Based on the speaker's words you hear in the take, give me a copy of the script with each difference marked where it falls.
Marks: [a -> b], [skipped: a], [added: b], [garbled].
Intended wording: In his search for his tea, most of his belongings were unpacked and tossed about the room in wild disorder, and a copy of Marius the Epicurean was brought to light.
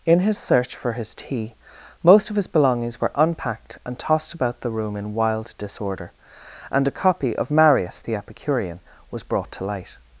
In his search for his tea, most of his belongings were unpacked and tossed about the room in wild disorder, and a copy of Marius the Epicurean was brought to light.